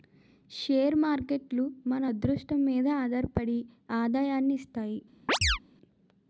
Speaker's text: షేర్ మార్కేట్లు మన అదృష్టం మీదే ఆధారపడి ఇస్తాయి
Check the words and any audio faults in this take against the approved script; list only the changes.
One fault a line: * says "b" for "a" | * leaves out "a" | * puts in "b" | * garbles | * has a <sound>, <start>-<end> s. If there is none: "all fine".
* puts in "ఆదాయాన్ని"
* has a chirp, 5.3-5.6 s